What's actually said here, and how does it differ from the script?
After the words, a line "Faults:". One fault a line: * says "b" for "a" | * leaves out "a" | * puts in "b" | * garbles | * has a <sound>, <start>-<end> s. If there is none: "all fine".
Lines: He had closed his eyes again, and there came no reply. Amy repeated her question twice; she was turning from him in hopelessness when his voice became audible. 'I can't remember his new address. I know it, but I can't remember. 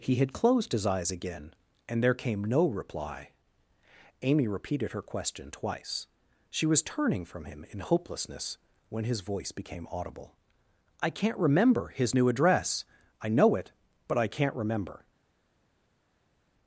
He had closed his eyes again, and there came no reply. Amy repeated her question twice; she was turning from him in hopelessness when his voice became audible. 'I can't remember his new address. I know it, but I can't remember.
Faults:
all fine